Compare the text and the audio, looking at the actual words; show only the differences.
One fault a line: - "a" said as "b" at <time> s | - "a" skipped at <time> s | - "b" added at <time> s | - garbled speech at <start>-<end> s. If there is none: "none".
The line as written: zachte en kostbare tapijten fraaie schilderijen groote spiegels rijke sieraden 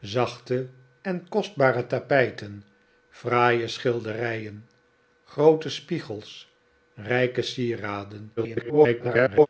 - garbled speech at 8.4-9.5 s